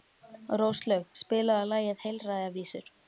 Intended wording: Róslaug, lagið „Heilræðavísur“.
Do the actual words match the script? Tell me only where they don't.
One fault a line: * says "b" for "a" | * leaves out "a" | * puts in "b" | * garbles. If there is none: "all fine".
* puts in "spilaðu"